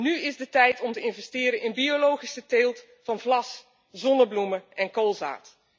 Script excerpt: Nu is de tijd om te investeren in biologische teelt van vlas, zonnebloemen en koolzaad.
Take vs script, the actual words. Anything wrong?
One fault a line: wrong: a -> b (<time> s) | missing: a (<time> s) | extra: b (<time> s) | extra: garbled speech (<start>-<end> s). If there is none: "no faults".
no faults